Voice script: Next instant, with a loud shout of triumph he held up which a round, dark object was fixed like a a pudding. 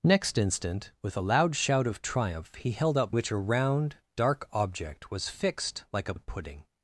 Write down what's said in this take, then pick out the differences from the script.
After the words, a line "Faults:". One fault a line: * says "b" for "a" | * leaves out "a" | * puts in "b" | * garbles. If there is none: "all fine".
Next instant, with a loud shout of triumph he held up which a round, dark object was fixed like a a pudding.
Faults:
all fine